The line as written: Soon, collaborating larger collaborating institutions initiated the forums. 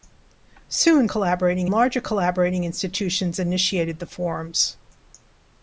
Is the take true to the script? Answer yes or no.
yes